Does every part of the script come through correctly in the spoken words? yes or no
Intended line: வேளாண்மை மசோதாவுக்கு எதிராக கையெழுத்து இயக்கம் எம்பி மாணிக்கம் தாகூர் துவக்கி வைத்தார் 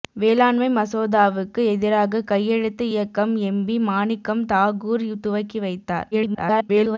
no